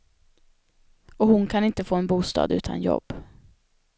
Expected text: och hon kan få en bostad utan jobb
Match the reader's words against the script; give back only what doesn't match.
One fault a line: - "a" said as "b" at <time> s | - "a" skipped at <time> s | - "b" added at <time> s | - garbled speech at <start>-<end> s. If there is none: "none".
- "inte" added at 1.6 s